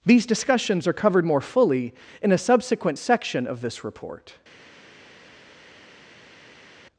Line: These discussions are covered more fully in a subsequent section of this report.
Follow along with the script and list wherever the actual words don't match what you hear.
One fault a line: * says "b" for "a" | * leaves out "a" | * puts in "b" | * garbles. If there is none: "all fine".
all fine